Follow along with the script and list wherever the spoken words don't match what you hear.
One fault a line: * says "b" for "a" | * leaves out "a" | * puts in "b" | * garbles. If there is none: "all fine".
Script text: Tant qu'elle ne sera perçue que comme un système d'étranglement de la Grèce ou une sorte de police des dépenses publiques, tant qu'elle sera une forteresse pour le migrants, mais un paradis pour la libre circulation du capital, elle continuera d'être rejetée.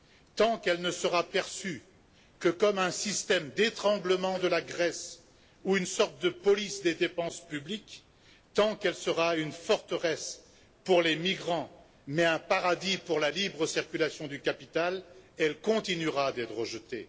* says "les" for "le"